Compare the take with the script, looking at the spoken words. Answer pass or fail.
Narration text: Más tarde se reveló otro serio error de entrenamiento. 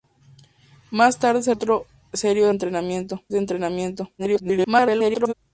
fail